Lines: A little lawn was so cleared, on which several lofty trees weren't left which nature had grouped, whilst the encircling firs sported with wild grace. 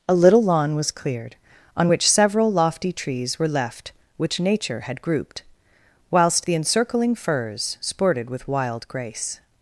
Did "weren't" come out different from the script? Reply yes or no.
yes